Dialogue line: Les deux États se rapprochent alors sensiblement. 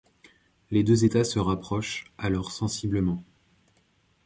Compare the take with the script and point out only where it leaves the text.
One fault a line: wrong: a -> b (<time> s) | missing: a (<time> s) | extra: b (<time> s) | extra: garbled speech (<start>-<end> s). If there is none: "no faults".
no faults